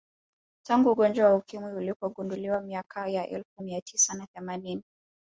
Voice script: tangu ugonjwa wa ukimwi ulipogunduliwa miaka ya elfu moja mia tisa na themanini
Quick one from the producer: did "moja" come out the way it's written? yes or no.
no